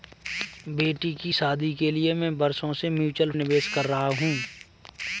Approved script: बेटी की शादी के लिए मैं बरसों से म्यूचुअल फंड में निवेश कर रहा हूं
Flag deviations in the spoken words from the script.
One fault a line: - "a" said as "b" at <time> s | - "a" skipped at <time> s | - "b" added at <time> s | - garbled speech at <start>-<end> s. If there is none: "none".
- "फंड में" skipped at 3.3 s